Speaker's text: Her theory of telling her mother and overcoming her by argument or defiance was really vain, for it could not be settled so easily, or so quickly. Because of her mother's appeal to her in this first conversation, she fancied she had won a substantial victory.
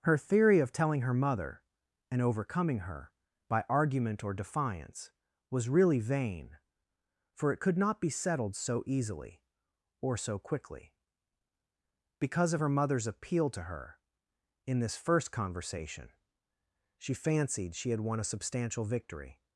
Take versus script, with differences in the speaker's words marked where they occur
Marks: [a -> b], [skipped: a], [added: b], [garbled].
Her theory of telling her mother and overcoming her by argument or defiance was really vain, for it could not be settled so easily, or so quickly. Because of her mother's appeal to her in this first conversation, she fancied she had won a substantial victory.